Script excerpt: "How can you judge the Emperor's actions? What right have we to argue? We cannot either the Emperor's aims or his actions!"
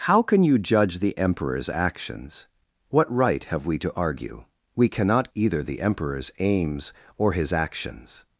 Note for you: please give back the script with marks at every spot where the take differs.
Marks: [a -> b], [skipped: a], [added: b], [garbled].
"How can you judge the Emperor's actions? What right have we to argue? We cannot either the Emperor's aims or his actions!"